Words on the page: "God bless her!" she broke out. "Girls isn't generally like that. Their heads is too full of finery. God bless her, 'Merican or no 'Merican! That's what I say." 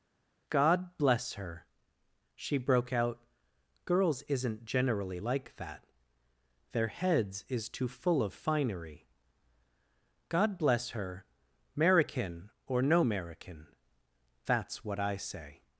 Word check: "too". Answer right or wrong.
right